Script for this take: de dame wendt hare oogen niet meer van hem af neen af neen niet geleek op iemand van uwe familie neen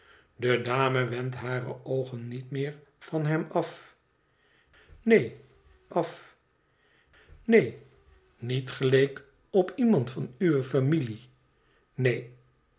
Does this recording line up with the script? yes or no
yes